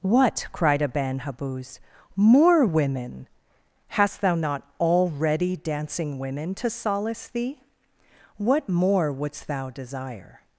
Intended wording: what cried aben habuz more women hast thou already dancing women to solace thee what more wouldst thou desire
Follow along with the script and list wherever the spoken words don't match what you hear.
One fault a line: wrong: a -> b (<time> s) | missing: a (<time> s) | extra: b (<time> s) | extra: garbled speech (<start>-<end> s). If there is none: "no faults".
extra: not (4.3 s)